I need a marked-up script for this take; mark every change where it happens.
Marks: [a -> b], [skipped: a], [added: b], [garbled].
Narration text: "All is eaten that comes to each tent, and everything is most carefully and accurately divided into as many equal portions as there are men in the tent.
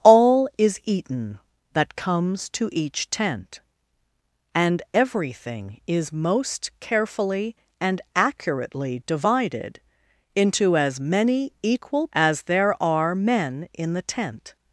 "All is eaten that comes to each tent, and everything is most carefully and accurately divided into as many equal [skipped: portions] as there are men in the tent.